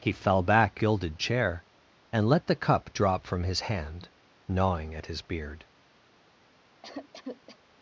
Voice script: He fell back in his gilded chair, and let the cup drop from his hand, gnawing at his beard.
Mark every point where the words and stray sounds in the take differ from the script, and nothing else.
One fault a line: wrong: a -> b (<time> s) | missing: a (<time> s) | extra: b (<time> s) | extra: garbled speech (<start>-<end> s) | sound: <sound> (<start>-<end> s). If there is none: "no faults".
missing: in his (0.8 s)
sound: cough (6.8-7.6 s)